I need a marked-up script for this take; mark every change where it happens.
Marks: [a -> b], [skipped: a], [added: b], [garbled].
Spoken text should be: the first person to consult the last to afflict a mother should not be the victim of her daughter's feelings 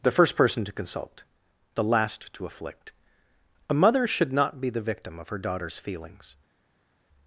the first person to consult the last to afflict a mother should not be the victim of her daughter's feelings